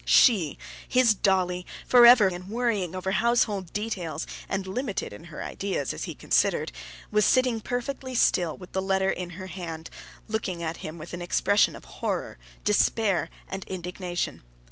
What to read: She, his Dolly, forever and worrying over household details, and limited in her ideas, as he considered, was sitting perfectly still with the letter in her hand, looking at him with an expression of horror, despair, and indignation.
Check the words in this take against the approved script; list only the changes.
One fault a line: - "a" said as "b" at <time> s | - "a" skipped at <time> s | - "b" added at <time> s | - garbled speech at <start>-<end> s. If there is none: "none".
none